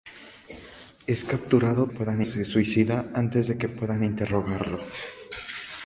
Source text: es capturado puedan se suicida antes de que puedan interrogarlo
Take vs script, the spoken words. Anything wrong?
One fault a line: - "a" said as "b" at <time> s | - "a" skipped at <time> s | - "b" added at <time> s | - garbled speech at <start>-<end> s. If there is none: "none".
none